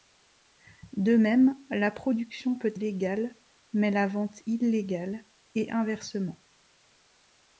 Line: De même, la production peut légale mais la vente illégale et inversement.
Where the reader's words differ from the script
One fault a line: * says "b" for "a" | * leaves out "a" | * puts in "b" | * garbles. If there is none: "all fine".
all fine